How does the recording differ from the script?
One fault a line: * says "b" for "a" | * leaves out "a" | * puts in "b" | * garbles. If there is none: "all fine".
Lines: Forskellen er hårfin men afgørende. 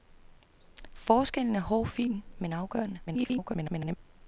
* garbles